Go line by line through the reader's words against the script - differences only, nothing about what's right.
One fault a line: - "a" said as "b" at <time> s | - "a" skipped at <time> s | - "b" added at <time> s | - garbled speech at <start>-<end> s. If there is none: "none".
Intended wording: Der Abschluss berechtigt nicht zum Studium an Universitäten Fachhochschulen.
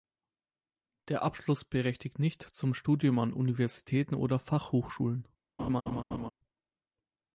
- "oder" added at 4.2 s